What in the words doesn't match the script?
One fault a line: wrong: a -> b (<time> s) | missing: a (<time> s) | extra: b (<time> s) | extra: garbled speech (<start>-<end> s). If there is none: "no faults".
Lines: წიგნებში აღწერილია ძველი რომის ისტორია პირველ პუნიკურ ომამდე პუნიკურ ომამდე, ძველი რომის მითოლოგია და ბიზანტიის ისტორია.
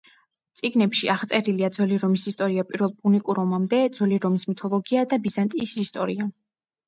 missing: პუნიკურ ომამდე (3.8 s)